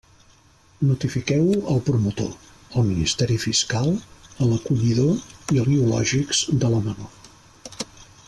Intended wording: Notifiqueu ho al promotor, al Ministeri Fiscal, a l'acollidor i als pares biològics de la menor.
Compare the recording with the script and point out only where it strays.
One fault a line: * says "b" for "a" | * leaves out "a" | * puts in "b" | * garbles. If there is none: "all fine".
* leaves out "als pares"